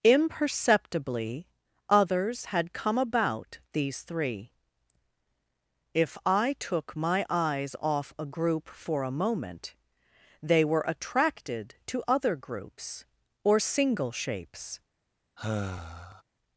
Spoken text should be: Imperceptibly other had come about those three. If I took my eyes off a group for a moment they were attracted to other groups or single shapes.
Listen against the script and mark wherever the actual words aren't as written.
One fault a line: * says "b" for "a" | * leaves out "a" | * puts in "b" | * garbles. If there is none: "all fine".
* says "others" for "other"
* says "these" for "those"